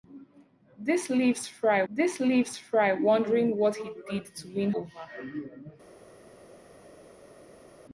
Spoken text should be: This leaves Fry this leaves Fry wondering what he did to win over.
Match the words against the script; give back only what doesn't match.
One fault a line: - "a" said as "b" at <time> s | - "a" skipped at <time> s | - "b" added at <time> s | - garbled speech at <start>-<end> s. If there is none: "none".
none